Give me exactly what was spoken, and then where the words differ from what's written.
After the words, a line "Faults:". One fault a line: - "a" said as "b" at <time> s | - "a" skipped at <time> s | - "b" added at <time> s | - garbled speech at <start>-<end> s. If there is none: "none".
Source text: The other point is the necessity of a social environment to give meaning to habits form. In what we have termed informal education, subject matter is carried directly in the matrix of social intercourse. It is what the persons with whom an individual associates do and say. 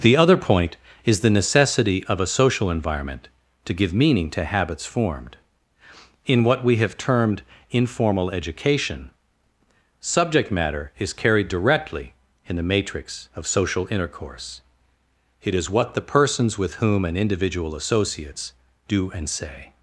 The other point is the necessity of a social environment to give meaning to habits formed. In what we have termed informal education, subject matter is carried directly in the matrix of social intercourse. It is what the persons with whom an individual associates do and say.
Faults:
- "form" said as "formed" at 4.8 s